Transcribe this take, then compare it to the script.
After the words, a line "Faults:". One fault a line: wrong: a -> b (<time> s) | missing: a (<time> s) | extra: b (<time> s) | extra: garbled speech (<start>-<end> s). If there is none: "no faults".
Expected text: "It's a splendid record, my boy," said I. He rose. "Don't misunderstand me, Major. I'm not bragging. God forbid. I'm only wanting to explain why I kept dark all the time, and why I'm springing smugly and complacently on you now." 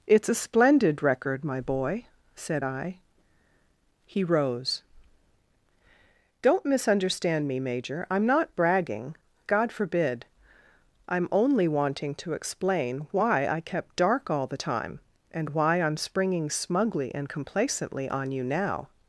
"It's a splendid record, my boy," said I. He rose. "Don't misunderstand me, Major. I'm not bragging. God forbid. I'm only wanting to explain why I kept dark all the time, and why I'm springing smugly and complacently on you now."
Faults:
no faults